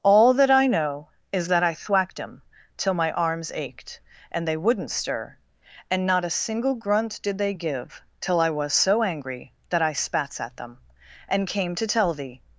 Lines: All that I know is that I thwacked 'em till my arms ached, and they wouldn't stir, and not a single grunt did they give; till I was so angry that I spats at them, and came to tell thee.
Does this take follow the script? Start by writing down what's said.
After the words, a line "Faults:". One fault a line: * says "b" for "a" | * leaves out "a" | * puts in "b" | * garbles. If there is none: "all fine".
All that I know is that I thwacked 'em till my arms ached, and they wouldn't stir, and not a single grunt did they give; till I was so angry that I spats at them, and came to tell thee.
Faults:
all fine